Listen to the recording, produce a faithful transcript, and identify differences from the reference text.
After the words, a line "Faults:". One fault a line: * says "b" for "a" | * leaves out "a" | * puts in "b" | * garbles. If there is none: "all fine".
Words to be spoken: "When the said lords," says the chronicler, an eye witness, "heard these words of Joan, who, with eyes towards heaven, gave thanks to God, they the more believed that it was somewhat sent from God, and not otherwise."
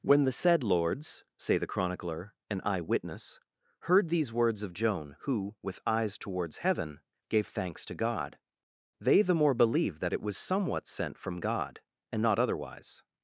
"When the said lords," say the chronicler, an eye witness, "heard these words of Joan, who, with eyes towards heaven, gave thanks to God, they the more believed that it was somewhat sent from God, and not otherwise."
Faults:
* says "say" for "says"